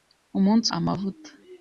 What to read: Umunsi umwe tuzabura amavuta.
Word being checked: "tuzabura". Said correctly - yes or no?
no